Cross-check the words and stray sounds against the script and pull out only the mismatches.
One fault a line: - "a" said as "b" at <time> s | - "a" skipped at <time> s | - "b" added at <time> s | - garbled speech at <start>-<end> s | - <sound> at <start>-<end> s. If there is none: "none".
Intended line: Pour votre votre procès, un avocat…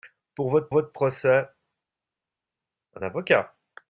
none